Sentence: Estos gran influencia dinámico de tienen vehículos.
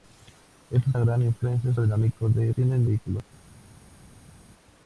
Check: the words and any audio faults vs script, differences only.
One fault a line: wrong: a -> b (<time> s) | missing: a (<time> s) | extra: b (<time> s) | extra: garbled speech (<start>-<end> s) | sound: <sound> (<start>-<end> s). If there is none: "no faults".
no faults